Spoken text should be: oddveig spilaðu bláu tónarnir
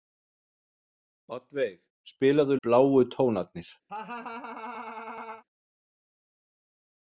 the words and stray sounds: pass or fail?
fail